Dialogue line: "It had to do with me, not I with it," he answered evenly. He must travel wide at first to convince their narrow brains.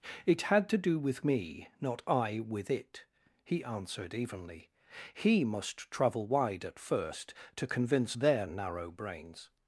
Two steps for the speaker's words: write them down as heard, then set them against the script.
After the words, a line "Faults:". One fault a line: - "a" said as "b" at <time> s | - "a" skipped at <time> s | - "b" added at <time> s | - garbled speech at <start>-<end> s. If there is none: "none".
"It had to do with me, not I with it," he answered evenly. He must travel wide at first to convince their narrow brains.
Faults:
none